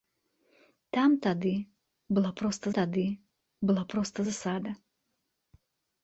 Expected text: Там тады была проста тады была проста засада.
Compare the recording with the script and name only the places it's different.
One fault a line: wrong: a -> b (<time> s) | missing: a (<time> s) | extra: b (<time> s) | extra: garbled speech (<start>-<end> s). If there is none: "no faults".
no faults